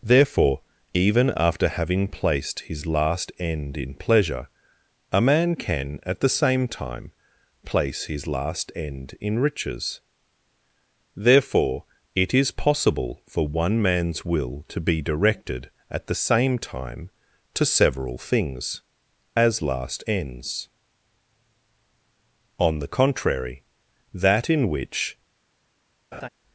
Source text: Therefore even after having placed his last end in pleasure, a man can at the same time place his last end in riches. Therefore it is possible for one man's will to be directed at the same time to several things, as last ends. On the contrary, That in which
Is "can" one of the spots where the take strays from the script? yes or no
no